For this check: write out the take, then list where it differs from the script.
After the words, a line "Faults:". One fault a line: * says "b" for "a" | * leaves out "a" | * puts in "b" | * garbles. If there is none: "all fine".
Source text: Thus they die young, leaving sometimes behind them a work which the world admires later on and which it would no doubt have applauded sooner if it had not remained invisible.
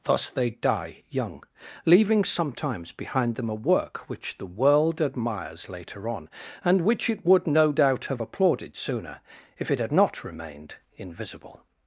Thus they die young, leaving sometimes behind them a work which the world admires later on and which it would no doubt have applauded sooner if it had not remained invisible.
Faults:
all fine